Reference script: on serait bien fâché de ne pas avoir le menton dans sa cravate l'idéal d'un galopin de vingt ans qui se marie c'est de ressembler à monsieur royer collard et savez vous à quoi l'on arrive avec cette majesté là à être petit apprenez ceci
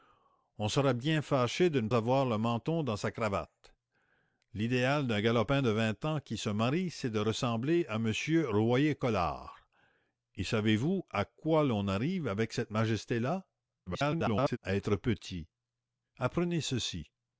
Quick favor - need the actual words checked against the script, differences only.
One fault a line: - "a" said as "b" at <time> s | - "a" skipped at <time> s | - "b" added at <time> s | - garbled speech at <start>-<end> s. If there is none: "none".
- "pas" skipped at 1.9 s
- garbled speech at 13.9-14.6 s